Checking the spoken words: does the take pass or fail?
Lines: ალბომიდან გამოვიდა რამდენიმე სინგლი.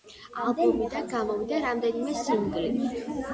pass